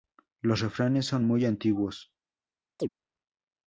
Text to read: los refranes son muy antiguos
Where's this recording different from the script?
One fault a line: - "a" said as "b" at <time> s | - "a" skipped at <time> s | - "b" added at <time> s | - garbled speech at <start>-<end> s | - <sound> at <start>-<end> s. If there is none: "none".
- chirp at 2.8-2.9 s